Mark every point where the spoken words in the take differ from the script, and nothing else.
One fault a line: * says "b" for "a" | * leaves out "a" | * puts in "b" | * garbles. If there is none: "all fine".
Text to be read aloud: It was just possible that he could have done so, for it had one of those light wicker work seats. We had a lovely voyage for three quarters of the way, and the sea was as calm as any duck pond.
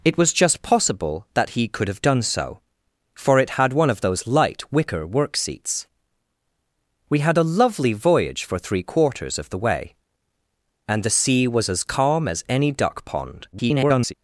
* garbles